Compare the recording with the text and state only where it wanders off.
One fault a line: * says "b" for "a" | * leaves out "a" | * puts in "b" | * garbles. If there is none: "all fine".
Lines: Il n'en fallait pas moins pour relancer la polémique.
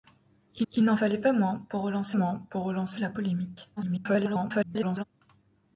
* puts in "il"
* puts in "moins pour relancer"
* garbles